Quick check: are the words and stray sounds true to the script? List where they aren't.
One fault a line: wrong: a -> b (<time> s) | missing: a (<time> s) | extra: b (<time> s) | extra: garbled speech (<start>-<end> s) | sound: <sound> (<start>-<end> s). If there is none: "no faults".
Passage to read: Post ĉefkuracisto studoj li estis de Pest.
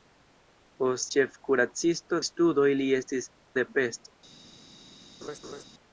sound: laugh (5.2-5.6 s)